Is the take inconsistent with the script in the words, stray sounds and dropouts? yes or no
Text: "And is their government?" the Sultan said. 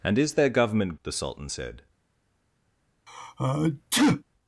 yes